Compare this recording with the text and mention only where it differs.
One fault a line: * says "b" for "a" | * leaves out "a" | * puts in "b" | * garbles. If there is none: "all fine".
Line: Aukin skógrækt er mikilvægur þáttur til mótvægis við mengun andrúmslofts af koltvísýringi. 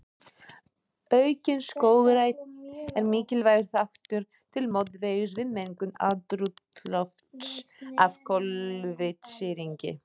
all fine